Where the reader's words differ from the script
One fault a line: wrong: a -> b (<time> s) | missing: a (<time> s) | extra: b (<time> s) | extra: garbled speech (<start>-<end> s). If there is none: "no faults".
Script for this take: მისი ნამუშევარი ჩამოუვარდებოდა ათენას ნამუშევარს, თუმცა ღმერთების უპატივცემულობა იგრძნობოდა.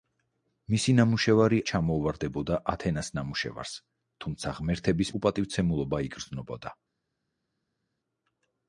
no faults